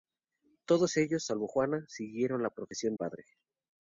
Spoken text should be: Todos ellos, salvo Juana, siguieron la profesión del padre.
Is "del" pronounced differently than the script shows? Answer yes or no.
yes